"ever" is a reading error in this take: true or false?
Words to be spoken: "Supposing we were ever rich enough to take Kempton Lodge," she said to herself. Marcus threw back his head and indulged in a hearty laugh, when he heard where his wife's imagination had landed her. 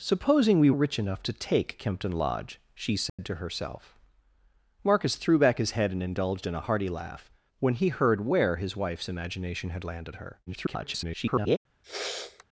true